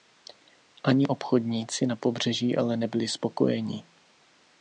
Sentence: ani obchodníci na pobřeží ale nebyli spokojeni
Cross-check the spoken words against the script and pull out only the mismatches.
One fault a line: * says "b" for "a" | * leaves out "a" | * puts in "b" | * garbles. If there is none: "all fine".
all fine